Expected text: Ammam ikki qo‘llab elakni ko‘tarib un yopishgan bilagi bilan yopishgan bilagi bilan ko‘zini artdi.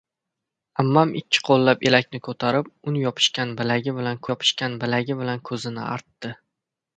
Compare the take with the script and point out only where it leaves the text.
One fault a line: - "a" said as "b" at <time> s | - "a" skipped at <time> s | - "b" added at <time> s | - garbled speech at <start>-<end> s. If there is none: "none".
none